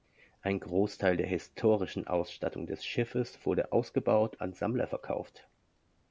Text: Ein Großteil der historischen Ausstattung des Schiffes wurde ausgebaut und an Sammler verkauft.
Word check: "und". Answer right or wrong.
wrong